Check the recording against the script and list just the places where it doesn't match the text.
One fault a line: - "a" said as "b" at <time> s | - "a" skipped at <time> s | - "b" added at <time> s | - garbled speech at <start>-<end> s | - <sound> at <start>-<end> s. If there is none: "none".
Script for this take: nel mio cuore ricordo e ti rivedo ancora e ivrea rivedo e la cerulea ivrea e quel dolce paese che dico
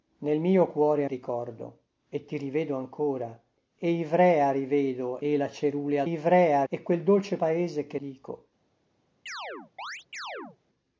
- chirp at 9.3-10.6 s